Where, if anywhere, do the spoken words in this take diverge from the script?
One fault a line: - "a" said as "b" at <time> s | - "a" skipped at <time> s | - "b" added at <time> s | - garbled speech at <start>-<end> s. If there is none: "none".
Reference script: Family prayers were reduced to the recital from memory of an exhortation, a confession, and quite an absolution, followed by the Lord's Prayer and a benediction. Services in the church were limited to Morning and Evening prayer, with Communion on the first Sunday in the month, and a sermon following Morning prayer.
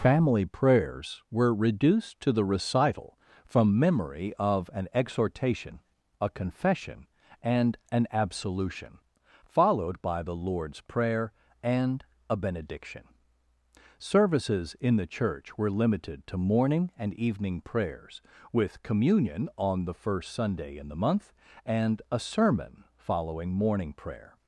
- "quite" skipped at 7.8 s
- "prayer" said as "prayers" at 17.6 s